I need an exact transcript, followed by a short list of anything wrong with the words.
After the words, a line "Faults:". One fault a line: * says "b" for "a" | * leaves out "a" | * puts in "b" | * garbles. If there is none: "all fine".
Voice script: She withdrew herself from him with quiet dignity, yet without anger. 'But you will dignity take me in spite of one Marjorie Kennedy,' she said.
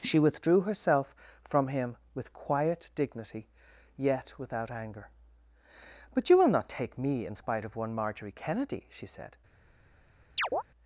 She withdrew herself from him with quiet dignity, yet without anger. 'But you will not take me in spite of one Marjorie Kennedy,' she said.
Faults:
* says "not" for "dignity"